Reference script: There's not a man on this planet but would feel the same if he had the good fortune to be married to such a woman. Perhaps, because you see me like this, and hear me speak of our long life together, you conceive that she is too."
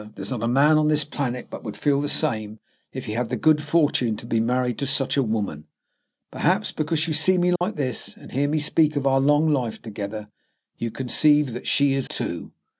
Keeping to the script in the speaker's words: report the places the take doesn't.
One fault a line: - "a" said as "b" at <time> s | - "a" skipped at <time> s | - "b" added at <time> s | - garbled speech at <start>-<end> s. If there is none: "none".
none